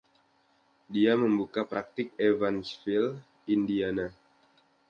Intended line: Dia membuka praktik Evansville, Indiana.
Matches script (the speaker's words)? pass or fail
pass